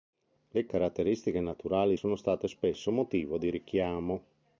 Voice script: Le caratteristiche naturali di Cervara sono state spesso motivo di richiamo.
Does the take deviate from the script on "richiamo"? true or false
false